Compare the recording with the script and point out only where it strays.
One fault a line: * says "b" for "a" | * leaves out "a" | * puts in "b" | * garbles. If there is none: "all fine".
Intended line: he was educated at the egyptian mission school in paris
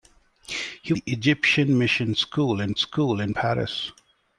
* leaves out "was educated at"
* puts in "school in"